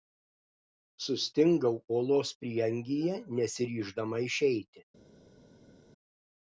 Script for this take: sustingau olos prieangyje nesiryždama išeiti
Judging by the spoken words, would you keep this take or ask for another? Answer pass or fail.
pass